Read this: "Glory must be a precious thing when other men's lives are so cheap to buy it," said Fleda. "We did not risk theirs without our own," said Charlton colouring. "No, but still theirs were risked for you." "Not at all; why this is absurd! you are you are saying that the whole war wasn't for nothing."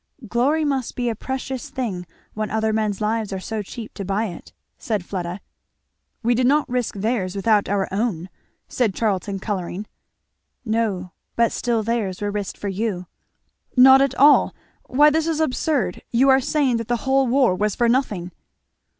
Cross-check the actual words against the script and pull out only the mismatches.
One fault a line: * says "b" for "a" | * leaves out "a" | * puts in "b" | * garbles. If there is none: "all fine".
* leaves out "you are"
* says "was" for "wasn't"